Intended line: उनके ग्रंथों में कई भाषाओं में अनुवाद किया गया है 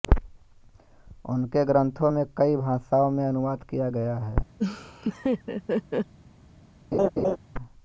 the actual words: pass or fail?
pass